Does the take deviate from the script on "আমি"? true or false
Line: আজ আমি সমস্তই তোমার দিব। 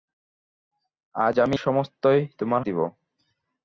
false